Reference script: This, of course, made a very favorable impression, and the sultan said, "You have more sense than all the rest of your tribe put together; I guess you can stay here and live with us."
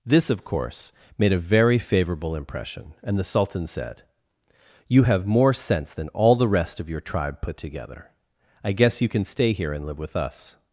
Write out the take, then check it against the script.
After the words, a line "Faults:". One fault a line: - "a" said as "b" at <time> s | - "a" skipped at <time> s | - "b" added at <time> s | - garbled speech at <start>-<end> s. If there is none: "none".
This, of course, made a very favorable impression, and the sultan said, "You have more sense than all the rest of your tribe put together; I guess you can stay here and live with us."
Faults:
none